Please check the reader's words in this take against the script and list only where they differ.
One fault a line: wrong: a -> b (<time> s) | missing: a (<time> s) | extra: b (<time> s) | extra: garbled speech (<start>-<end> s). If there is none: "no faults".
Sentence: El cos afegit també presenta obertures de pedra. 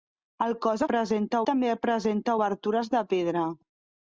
wrong: afegit -> presenta (0.9 s)